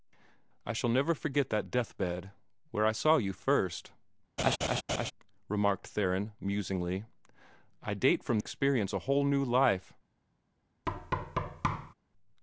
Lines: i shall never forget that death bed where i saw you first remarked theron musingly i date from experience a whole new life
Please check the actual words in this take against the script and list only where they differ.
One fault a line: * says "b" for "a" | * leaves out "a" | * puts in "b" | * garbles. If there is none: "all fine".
all fine